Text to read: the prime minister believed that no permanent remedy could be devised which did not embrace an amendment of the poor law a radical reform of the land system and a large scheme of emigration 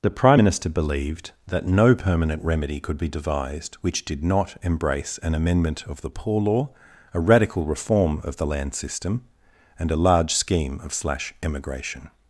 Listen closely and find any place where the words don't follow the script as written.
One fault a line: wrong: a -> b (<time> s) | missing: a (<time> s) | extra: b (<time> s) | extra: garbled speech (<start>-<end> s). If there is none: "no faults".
extra: slash (10.9 s)